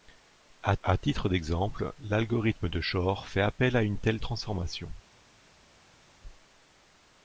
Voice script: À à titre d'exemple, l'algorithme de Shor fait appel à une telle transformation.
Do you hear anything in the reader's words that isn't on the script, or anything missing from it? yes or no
no